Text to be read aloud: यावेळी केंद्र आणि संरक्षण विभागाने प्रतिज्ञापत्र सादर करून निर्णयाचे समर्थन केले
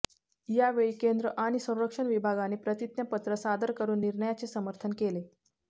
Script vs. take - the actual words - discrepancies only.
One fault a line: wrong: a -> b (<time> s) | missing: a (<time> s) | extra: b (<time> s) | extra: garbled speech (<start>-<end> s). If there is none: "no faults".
no faults